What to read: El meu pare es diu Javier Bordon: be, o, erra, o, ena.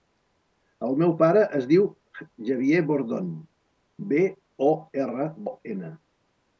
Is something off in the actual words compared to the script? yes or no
no